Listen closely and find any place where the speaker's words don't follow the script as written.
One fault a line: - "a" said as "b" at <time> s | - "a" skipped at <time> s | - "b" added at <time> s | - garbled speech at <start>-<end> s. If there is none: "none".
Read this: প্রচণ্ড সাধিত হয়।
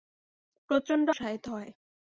none